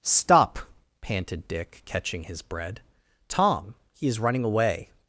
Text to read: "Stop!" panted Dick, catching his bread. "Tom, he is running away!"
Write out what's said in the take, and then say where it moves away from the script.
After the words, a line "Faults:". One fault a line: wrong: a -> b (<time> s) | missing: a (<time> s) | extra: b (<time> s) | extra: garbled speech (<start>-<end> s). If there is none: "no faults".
"Stop!" panted Dick, catching his bread. "Tom, he is running away!"
Faults:
no faults